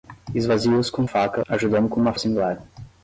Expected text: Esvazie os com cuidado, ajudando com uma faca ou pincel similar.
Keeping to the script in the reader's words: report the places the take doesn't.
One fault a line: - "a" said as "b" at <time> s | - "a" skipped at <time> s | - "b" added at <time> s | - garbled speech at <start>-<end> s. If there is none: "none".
- "cuidado" said as "faca" at 1.0 s
- "faca ou pincel" skipped at 2.1 s